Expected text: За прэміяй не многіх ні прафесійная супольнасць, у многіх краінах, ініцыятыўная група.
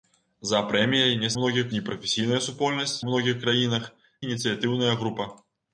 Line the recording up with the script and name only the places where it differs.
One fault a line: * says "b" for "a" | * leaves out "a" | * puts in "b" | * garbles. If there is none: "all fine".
all fine